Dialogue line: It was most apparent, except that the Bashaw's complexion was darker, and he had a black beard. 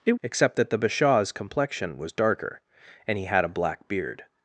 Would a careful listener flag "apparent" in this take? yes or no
yes